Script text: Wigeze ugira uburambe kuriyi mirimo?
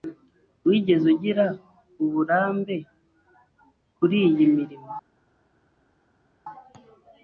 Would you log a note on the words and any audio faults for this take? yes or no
no